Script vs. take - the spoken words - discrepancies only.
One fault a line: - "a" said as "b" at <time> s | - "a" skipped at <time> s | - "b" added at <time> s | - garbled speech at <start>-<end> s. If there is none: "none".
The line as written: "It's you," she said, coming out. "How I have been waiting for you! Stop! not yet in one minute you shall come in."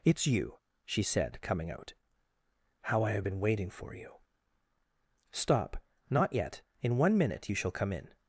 none